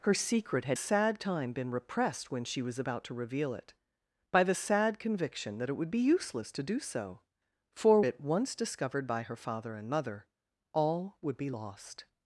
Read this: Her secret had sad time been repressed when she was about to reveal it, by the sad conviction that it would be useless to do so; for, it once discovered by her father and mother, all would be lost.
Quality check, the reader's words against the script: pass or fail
pass